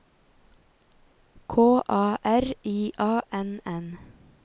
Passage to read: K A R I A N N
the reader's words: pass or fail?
pass